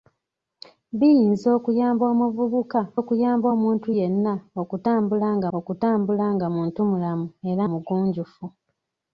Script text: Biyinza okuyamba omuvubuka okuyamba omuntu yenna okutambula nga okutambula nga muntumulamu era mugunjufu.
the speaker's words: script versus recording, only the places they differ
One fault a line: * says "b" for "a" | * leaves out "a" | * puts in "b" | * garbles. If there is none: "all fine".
all fine